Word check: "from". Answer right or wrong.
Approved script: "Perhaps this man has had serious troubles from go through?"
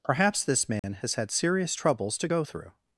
wrong